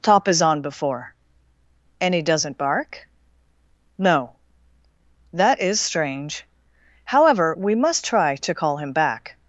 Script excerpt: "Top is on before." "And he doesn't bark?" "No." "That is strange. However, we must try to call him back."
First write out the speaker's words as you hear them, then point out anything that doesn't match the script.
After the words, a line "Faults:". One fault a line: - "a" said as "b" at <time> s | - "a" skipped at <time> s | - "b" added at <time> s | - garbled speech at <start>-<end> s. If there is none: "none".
"Top is on before." "And he doesn't bark?" "No." "That is strange. However, we must try to call him back."
Faults:
none